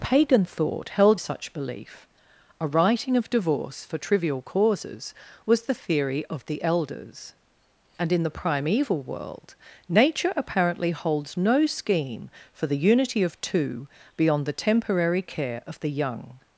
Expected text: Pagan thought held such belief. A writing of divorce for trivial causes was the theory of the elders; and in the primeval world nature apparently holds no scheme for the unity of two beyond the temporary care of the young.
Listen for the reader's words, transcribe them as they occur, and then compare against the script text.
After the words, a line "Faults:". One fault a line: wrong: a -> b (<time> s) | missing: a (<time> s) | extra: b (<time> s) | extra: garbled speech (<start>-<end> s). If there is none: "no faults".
Pagan thought held such belief. A writing of divorce for trivial causes was the theory of the elders; and in the primeval world nature apparently holds no scheme for the unity of two beyond the temporary care of the young.
Faults:
no faults